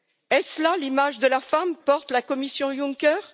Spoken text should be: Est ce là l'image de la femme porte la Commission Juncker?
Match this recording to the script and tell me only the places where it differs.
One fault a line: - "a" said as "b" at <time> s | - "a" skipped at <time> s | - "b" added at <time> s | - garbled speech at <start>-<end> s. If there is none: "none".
none